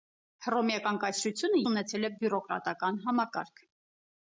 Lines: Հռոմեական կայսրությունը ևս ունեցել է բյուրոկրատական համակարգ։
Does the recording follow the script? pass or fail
fail